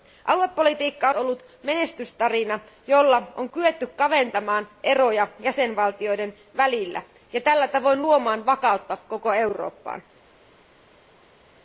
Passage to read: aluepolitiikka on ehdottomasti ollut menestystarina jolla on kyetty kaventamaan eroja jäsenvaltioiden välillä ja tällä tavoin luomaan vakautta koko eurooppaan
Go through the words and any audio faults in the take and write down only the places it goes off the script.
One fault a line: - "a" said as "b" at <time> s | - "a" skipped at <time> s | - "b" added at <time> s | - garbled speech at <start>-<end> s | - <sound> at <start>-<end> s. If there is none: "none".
- "on ehdottomasti" skipped at 1.1 s